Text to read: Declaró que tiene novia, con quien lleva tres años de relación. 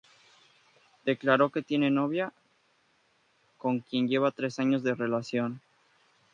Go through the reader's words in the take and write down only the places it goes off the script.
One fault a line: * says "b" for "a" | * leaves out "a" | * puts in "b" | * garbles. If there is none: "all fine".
all fine